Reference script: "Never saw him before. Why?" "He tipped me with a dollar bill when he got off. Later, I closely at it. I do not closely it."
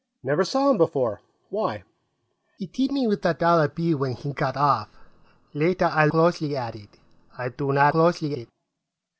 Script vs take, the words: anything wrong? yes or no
no